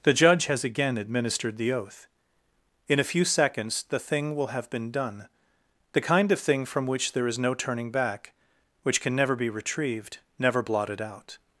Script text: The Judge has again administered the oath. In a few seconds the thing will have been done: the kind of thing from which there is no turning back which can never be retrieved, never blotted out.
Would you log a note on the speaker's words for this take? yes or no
no